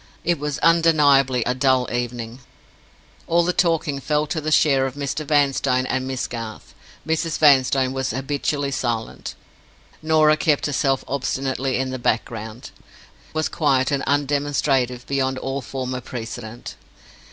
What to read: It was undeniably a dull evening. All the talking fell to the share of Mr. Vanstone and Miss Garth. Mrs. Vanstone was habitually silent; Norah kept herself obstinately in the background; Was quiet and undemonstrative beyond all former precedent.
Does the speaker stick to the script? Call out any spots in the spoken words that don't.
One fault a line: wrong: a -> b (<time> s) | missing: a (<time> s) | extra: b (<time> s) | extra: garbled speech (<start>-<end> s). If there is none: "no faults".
no faults